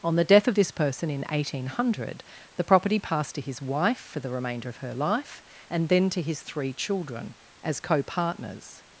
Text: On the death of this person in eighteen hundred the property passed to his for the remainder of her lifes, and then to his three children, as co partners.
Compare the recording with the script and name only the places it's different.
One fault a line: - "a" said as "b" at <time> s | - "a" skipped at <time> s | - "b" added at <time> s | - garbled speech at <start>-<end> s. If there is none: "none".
- "wife" added at 3.6 s
- "lifes" said as "life" at 5.0 s